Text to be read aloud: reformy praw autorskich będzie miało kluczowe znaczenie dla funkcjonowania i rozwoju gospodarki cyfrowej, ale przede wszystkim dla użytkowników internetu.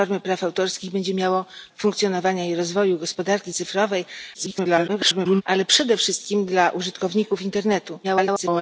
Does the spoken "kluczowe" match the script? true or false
false